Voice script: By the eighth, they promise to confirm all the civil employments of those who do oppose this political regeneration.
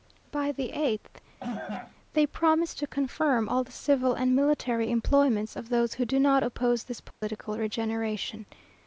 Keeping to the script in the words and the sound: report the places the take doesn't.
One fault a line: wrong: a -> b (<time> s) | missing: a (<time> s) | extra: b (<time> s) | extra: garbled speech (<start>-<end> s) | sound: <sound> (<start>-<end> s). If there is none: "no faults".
sound: cough (1.4-2.0 s)
extra: and military (4.1 s)
extra: not (6.2 s)
sound: dropout (7.1-7.2 s)